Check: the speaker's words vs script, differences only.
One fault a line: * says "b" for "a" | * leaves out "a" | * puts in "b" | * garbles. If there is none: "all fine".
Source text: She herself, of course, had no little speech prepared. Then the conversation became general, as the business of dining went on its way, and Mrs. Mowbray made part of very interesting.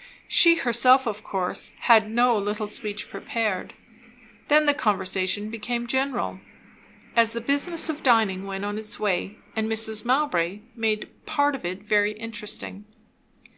* puts in "it"